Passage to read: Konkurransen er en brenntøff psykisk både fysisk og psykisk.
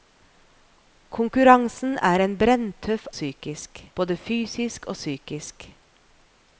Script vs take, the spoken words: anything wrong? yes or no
no